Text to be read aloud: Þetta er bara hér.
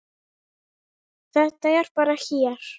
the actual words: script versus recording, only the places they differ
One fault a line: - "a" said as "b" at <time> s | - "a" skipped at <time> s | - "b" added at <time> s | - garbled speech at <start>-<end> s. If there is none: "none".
none